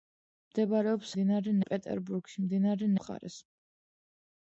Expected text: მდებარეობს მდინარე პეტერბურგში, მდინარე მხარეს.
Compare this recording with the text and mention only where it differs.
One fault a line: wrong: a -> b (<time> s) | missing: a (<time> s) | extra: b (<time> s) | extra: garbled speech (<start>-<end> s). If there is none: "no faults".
no faults